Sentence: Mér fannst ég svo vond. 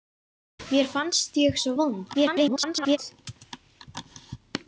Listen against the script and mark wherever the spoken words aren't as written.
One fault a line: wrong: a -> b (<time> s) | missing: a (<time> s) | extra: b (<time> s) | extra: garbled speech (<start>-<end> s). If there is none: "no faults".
extra: garbled speech (2.1-3.0 s)